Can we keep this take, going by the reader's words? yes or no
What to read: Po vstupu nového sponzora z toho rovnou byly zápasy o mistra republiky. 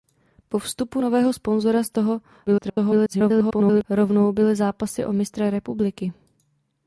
no